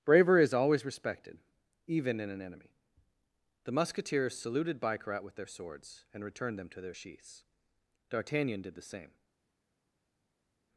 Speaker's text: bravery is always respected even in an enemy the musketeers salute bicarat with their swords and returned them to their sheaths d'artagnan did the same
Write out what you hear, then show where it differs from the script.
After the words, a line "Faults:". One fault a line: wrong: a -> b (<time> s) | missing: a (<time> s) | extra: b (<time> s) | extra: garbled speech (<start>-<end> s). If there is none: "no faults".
bravery is always respected even in an enemy the musketeers saluted bicarat with their swords and returned them to their sheaths d'artagnan did the same
Faults:
wrong: salute -> saluted (4.3 s)